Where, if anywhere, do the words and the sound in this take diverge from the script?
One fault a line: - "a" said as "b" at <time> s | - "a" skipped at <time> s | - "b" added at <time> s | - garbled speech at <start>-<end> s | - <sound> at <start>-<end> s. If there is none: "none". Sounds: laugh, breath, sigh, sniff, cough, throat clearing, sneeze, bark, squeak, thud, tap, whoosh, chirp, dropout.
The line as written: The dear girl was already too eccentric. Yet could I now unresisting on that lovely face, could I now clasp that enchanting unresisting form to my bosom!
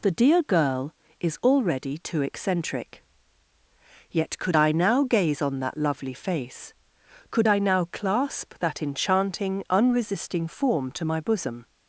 - "was" said as "is" at 1.2 s
- "unresisting" said as "gaze" at 5.0 s